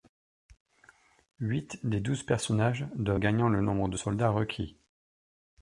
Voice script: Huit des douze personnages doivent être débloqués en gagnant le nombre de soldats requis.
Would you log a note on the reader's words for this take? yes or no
yes